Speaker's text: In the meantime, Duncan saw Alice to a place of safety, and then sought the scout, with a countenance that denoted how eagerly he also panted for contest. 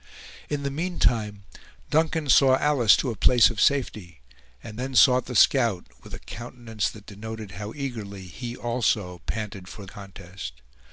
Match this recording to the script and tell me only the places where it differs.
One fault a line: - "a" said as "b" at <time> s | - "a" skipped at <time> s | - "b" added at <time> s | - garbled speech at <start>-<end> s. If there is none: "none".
none